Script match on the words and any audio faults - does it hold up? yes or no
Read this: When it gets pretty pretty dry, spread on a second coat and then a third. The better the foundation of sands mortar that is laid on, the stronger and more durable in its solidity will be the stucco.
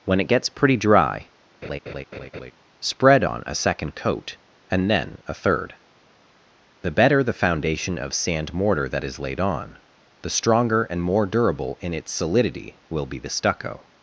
no